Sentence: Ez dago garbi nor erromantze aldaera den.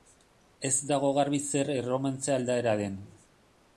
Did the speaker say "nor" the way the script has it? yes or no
no